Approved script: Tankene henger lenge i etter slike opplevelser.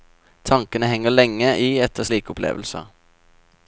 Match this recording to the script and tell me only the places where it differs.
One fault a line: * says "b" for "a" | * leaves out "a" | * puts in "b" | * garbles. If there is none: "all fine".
all fine